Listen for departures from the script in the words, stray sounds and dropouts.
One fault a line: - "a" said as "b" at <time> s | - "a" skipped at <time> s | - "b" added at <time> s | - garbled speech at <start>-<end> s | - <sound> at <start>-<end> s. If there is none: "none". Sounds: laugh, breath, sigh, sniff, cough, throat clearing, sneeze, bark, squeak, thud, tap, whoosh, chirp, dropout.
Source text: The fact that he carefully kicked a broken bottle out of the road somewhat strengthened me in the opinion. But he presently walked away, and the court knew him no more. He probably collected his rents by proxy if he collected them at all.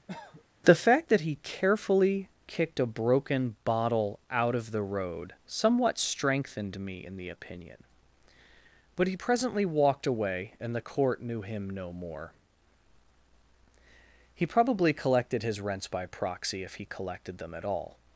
- cough at 0.1-0.4 s